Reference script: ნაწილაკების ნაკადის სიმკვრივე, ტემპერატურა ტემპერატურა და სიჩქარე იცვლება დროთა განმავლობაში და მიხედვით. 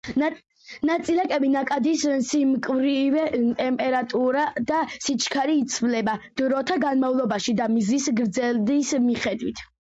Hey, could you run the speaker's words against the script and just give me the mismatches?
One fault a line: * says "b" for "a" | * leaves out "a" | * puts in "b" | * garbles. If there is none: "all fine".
* leaves out "ტემპერატურა"
* puts in "მზის გრძედის"